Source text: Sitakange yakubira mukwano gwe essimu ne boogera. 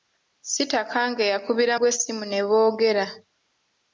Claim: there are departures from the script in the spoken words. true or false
true